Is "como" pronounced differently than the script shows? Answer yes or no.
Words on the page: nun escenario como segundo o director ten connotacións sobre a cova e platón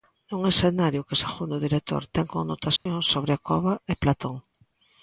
yes